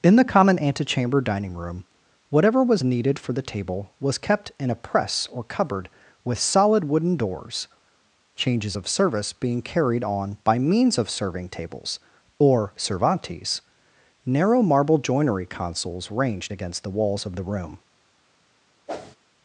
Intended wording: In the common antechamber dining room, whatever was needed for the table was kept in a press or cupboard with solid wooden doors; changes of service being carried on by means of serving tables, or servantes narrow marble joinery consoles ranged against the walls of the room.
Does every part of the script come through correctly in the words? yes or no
yes